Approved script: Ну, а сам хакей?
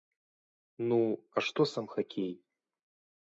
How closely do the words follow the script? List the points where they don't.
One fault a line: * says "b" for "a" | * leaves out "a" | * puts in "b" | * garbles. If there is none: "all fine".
* puts in "што"